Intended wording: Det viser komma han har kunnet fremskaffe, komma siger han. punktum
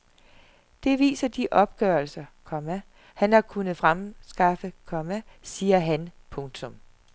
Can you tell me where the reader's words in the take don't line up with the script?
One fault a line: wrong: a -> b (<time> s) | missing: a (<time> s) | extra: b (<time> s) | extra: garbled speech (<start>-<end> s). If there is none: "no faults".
extra: de opgørelser (1.3 s)